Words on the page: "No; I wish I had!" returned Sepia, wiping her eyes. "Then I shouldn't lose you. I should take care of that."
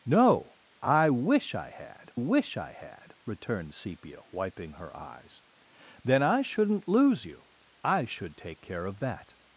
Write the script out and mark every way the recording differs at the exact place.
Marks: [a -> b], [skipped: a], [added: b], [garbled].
"No; I wish I had!" [added: wish I had] returned Sepia, wiping her eyes. "Then I shouldn't lose you. I should take care of that."